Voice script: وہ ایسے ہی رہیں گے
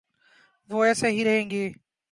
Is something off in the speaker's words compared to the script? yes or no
no